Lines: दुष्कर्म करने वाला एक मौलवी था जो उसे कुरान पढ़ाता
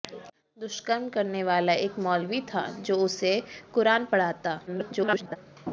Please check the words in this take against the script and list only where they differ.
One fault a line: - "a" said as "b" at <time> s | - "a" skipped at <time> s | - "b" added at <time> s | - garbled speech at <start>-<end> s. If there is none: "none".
- garbled speech at 4.7-5.4 s